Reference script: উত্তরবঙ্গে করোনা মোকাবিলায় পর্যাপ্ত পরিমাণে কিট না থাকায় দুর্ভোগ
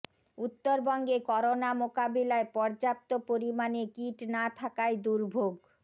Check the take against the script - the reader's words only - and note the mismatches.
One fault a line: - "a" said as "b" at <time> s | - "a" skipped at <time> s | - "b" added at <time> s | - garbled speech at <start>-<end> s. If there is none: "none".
none